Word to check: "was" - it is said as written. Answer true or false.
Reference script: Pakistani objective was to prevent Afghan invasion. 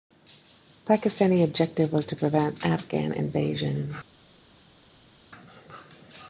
true